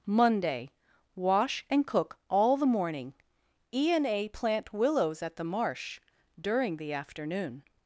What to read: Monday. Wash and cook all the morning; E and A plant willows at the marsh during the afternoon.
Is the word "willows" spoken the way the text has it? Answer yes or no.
yes